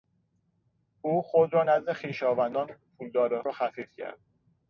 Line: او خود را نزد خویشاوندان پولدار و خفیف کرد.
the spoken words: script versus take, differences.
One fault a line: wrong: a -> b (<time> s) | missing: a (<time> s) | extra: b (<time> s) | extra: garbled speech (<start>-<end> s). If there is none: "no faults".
no faults